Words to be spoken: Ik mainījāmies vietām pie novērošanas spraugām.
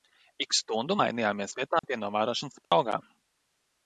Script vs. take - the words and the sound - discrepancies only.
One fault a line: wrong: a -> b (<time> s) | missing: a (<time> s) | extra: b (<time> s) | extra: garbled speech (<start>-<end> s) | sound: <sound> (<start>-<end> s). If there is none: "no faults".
extra: stundu (0.6 s)
sound: dropout (1.8-1.8 s)
sound: dropout (2.6-2.7 s)